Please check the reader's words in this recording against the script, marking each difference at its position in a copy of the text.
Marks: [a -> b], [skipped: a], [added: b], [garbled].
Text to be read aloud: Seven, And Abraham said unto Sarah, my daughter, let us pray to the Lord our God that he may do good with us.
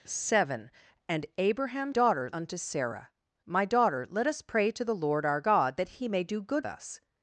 Seven, And Abraham [said -> daughter] unto Sarah, my daughter, let us pray to the Lord our God that he may do good [skipped: with] us.